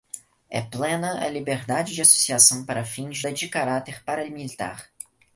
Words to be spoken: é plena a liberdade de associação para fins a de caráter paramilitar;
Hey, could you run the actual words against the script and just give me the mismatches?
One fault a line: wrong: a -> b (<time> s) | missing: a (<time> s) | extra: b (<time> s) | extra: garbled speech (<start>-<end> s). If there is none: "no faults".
no faults